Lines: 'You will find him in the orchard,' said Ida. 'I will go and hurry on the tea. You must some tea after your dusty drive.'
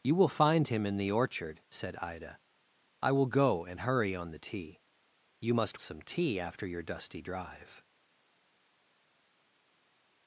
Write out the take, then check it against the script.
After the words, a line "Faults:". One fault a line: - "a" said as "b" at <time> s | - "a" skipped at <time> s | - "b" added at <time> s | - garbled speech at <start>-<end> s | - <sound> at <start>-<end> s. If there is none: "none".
'You will find him in the orchard,' said Ida. 'I will go and hurry on the tea. You must some tea after your dusty drive.'
Faults:
none